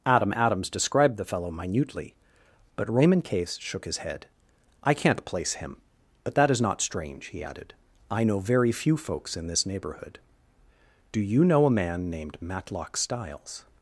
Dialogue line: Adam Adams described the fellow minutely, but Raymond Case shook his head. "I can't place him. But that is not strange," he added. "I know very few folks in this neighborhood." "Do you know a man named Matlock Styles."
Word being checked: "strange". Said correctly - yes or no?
yes